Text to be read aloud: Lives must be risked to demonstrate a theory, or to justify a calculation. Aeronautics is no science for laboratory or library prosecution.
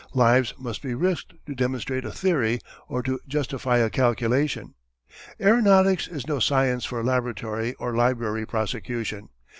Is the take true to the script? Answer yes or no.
yes